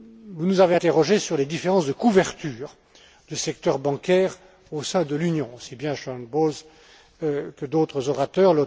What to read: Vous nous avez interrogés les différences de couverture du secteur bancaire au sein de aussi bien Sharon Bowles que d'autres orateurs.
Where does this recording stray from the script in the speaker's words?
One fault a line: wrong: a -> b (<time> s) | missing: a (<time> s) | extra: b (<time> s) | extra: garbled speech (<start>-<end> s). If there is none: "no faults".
extra: sur (1.2 s)
extra: l'Union (5.1 s)